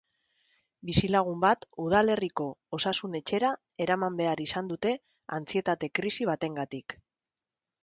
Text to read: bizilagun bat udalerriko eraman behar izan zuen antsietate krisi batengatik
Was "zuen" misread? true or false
true